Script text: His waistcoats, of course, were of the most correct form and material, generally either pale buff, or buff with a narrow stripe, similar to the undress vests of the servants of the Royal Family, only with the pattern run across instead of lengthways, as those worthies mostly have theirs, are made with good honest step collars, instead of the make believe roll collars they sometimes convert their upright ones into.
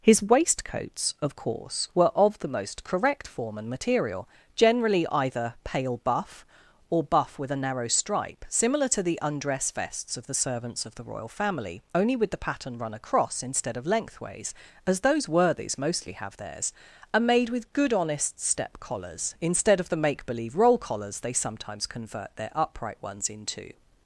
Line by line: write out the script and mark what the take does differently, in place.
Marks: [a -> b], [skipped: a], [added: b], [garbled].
His waistcoats, of course, were of the most correct form and material, generally either pale buff, or buff with a narrow stripe, similar to the undress vests of the servants of the Royal Family, only with the pattern run across instead of lengthways, as those worthies mostly have theirs, are made with good honest step collars, instead of the make believe roll collars they sometimes convert their upright ones into.